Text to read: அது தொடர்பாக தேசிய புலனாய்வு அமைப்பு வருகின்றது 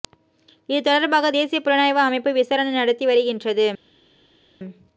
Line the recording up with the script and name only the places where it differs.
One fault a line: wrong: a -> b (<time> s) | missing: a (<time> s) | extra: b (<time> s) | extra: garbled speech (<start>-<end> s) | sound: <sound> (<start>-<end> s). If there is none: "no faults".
wrong: அது -> இது (0.7 s)
extra: விசாரணை நடத்தி (2.3 s)